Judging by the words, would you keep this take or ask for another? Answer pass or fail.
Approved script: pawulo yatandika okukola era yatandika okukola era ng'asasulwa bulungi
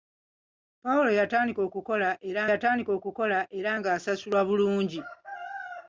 pass